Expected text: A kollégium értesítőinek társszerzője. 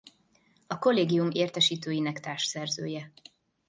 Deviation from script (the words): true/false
false